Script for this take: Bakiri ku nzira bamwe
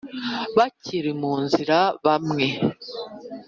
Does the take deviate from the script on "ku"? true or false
true